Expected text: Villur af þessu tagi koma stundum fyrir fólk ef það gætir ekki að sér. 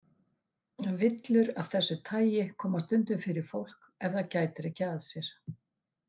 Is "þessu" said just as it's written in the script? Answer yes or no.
yes